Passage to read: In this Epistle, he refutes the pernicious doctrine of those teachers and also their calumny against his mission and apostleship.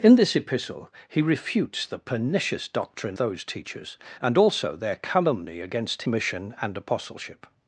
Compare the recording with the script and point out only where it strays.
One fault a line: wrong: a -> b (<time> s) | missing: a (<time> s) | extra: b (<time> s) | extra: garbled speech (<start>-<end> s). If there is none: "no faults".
missing: of (3.2 s)
missing: his (6.0 s)